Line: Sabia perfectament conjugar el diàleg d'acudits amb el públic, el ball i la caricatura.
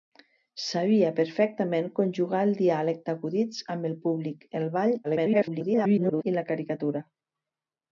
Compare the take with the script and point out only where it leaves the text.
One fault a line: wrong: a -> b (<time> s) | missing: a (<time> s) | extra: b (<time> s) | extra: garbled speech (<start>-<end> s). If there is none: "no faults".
extra: garbled speech (5.0-6.2 s)